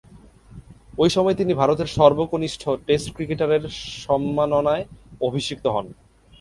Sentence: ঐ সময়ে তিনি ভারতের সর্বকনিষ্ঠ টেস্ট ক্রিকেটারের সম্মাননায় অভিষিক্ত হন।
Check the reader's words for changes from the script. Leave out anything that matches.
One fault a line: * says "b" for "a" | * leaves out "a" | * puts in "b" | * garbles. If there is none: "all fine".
all fine